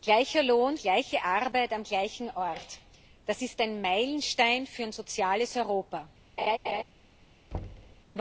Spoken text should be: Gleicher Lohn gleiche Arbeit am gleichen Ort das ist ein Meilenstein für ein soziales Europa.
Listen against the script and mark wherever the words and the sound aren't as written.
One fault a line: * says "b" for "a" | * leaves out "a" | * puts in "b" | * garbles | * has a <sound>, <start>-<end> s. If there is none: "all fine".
* has a laugh, 6.4-6.8 s
* has a thud, 7.5-8.0 s